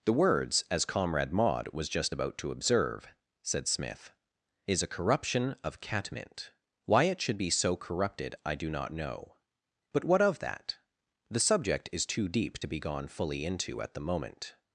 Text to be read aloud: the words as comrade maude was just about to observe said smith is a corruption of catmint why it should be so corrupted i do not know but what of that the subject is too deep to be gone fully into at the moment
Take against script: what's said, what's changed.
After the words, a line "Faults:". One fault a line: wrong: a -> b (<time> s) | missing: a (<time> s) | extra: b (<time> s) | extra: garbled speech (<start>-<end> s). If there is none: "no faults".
the words as comrade maude was just about to observe said smith is a corruption of catmint why it should be so corrupted i do not know but what of that the subject is too deep to be gone fully into at the moment
Faults:
no faults